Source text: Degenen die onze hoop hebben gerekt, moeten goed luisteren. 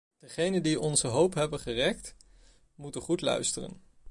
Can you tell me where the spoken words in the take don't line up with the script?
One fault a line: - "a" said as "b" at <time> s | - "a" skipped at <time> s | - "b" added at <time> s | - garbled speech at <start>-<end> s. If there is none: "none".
none